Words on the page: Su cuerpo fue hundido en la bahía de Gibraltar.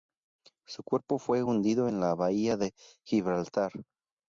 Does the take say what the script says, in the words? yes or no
yes